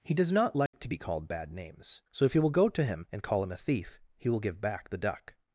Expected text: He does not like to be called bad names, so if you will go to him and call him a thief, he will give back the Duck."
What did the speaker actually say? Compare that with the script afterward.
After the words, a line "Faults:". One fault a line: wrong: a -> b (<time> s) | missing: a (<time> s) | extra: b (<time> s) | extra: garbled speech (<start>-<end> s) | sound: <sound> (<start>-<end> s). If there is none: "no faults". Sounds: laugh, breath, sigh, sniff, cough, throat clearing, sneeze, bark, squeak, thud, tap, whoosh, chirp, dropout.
He does not like to be called bad names, so if you will go to him and call him a thief, he will give back the Duck."
Faults:
sound: dropout (0.7-0.7 s)